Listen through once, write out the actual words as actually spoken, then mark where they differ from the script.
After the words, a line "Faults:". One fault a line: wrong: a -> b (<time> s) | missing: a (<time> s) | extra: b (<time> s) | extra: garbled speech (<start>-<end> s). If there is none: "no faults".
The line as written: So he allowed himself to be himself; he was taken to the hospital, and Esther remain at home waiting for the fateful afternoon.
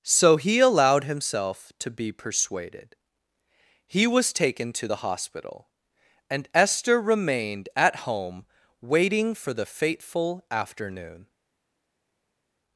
So he allowed himself to be persuaded; he was taken to the hospital, and Esther remained at home waiting for the fateful afternoon.
Faults:
wrong: himself -> persuaded (2.1 s)
wrong: remain -> remained (7.0 s)